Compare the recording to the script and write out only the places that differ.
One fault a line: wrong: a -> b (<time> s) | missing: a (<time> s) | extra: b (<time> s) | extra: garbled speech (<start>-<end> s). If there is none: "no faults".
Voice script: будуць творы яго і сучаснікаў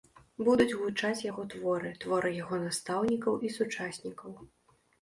extra: гучаць яго (0.8 s)
extra: творы (2.1 s)
extra: настаўнікаў (2.7 s)